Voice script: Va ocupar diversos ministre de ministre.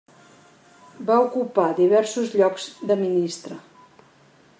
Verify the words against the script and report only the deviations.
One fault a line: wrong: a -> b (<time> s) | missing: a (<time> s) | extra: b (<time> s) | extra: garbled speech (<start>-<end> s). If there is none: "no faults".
wrong: ministre -> llocs (2.4 s)